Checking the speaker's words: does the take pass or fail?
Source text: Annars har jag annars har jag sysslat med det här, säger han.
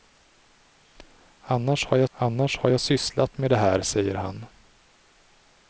pass